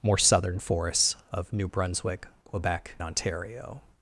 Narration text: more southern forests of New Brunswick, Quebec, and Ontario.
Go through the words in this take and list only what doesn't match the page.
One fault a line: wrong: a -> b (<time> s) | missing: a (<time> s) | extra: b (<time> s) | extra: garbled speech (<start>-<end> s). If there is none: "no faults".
missing: and (3.0 s)